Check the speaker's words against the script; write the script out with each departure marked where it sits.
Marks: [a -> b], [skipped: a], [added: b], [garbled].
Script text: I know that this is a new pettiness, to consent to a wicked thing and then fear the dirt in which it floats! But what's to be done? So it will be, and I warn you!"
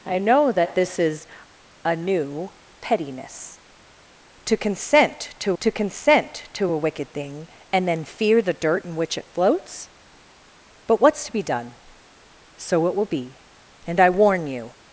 I know that this is a new pettiness, to consent to [added: to consent to] a wicked thing and then fear the dirt in which it floats! But what's to be done? So it will be, and I warn you!"